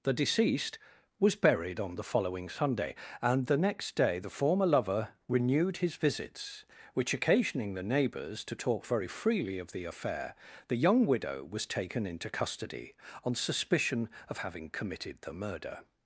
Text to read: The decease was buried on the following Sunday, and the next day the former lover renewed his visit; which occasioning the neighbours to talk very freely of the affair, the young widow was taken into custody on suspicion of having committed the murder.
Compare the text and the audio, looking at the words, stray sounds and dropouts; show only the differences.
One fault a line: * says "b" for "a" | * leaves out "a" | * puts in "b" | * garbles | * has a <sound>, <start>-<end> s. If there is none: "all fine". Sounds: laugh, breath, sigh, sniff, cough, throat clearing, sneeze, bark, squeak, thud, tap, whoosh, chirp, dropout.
* says "deceased" for "decease"
* says "visits" for "visit"